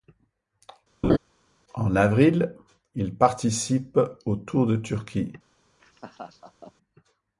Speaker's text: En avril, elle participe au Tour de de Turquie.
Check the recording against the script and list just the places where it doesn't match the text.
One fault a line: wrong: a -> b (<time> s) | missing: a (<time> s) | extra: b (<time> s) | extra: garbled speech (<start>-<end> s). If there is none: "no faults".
wrong: elle -> il (2.9 s)
missing: de (4.8 s)